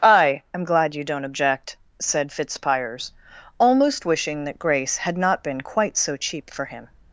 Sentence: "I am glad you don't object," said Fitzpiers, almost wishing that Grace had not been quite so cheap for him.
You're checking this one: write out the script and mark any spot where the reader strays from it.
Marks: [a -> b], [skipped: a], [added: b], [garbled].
"I am glad you don't object," said Fitzpiers, almost wishing that Grace had not been quite so cheap for him.